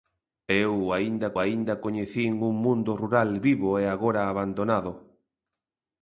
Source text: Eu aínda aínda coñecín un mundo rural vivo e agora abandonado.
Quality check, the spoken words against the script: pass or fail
pass